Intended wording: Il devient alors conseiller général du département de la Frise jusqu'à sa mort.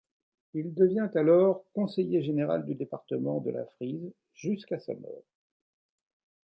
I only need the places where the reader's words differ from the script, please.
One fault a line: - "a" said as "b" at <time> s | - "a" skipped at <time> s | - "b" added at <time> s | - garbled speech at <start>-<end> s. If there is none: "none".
none